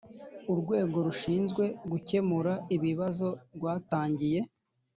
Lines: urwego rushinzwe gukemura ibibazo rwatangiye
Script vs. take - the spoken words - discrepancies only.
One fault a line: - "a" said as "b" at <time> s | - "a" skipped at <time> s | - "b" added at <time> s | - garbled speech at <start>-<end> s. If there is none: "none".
none